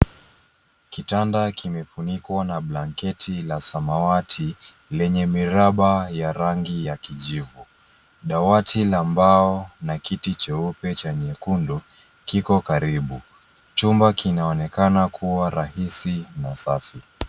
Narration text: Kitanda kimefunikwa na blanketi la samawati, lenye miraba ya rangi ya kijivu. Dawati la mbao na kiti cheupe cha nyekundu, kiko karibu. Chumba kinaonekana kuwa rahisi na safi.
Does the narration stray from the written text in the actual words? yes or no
no